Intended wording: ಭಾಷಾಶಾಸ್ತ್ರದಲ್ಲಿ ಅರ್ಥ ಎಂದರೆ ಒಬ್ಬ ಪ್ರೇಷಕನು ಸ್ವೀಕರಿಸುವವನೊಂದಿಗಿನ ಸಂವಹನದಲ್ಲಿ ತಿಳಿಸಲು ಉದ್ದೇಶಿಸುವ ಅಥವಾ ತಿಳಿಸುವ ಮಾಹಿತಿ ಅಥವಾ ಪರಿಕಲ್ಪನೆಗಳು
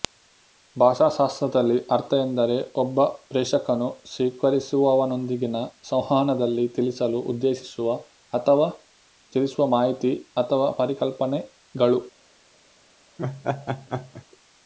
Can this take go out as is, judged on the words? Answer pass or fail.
pass